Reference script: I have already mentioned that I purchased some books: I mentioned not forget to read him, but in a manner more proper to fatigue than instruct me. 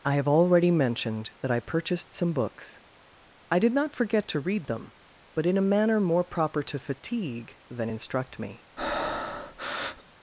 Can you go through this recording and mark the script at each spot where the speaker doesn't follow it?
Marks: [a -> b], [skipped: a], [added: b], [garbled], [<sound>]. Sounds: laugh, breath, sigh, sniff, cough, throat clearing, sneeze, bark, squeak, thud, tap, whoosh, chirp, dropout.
I have already mentioned that I purchased some books: I [mentioned -> did] not forget to read [him, -> them] but in a manner more proper to fatigue than instruct me. [breath]